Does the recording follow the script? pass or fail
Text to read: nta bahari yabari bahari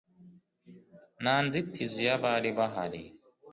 fail